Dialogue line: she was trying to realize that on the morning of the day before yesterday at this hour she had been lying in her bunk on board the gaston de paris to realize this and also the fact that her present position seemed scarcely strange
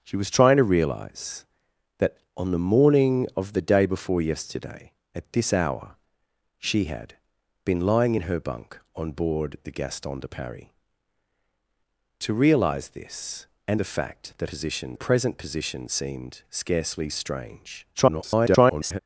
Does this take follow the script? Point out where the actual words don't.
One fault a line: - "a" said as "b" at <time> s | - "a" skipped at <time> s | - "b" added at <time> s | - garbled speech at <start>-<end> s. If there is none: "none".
- "also" skipped at 13.8 s
- "her" said as "position" at 14.5 s
- garbled speech at 17.9-19.0 s